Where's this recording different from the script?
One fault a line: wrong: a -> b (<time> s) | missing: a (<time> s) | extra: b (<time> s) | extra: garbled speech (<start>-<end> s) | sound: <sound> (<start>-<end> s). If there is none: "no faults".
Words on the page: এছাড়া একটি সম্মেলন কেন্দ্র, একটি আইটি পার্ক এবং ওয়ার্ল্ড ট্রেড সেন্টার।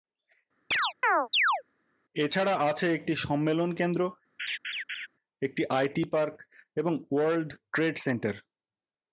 sound: chirp (0.7-1.6 s)
extra: আছে (2.7 s)
sound: laugh (4.4-5.1 s)